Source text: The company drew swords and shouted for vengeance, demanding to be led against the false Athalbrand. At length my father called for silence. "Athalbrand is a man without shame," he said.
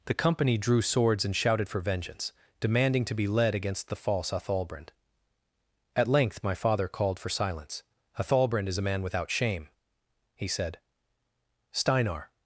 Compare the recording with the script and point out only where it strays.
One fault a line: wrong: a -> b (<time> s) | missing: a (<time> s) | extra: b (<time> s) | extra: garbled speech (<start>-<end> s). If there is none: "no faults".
extra: Steinar (11.7 s)